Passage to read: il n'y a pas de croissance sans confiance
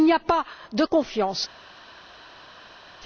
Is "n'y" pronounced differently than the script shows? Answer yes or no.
no